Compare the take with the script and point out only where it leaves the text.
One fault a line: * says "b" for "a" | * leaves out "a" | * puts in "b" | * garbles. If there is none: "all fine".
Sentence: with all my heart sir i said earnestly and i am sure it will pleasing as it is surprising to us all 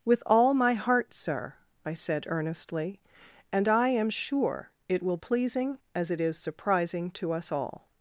all fine